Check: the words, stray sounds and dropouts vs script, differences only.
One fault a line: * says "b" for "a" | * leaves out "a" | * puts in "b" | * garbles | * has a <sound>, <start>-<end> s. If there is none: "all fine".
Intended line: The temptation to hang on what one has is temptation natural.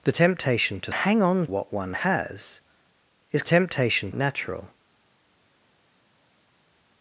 all fine